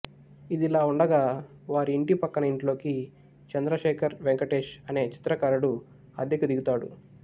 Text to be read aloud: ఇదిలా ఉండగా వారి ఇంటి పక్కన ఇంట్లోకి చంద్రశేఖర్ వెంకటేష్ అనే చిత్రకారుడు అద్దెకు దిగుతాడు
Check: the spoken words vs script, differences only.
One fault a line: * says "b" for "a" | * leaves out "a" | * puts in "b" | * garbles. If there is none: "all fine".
all fine